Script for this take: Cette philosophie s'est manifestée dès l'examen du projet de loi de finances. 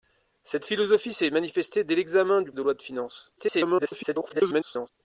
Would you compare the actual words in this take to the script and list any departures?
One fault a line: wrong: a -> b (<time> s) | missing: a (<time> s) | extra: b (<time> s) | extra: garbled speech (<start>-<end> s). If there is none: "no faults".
missing: projet (2.5 s)
extra: garbled speech (3.4-4.9 s)